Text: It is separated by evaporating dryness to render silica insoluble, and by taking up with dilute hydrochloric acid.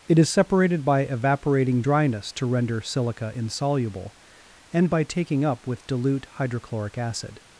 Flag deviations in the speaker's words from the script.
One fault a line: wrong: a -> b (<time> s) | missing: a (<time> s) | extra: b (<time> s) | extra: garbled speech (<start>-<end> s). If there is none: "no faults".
no faults